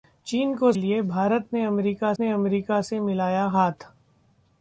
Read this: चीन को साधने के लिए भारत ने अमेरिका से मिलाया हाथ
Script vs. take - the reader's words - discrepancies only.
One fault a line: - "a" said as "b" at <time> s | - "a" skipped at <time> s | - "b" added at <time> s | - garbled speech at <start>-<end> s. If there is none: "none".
- "साधने के लिए भारत" said as "लिए भारत ने अमेरिका" at 0.7 s